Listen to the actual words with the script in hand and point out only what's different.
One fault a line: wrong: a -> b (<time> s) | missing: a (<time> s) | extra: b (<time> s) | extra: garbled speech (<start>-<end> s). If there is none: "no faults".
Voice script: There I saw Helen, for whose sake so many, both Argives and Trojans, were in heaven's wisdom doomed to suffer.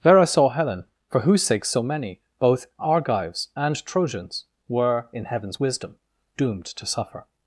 no faults